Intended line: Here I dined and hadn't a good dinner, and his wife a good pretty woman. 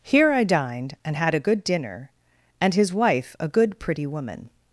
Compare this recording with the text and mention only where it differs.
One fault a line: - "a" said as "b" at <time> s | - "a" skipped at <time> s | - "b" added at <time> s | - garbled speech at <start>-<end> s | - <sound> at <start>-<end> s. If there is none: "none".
- "hadn't" said as "had" at 1.1 s